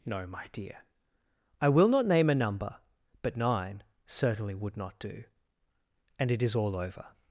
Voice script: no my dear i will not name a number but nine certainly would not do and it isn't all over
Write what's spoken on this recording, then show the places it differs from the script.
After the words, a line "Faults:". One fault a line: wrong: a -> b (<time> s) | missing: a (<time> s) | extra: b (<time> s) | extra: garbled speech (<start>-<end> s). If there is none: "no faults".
no my dear i will not name a number but nine certainly would not do and it is all over
Faults:
wrong: isn't -> is (6.4 s)